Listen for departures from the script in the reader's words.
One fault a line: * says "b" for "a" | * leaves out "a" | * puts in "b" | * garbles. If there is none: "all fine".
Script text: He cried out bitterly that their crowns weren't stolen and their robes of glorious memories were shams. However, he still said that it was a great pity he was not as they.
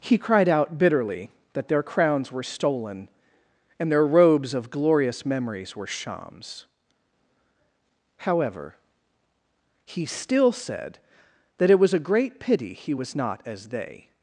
* says "were" for "weren't"